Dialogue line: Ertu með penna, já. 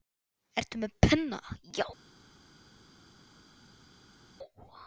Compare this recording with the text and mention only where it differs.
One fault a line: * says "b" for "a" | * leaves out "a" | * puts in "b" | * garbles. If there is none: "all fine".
all fine